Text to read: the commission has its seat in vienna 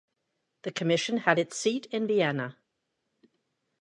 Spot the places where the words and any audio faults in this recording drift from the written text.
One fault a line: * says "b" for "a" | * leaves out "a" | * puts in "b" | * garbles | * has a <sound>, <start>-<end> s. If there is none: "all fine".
* says "had" for "has"